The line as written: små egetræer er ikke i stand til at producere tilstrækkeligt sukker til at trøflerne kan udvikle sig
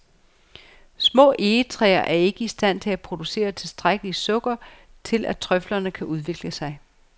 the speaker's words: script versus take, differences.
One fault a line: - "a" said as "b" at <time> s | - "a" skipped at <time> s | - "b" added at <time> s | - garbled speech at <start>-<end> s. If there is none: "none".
none